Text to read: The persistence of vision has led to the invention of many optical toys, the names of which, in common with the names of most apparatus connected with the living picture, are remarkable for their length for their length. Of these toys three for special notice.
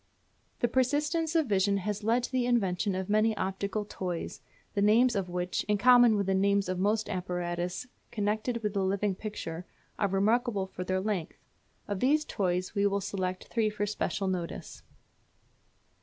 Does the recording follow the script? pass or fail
fail